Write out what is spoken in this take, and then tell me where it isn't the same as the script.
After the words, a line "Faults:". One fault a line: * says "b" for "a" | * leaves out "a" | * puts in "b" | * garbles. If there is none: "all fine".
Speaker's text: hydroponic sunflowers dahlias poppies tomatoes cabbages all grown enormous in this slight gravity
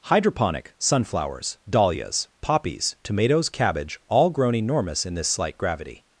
hydroponic sunflowers dahlias poppies tomatoes cabbage all grown enormous in this slight gravity
Faults:
* says "cabbage" for "cabbages"